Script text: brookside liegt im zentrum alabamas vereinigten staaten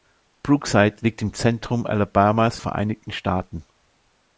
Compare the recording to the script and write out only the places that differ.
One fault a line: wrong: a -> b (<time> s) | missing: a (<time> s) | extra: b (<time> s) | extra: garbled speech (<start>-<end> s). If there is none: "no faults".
no faults